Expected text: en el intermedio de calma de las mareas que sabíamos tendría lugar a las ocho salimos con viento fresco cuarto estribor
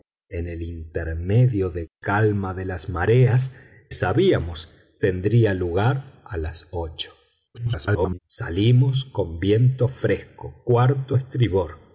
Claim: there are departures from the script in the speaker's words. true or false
true